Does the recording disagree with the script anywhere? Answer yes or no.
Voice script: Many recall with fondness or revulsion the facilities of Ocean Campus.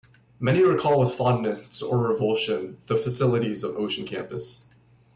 no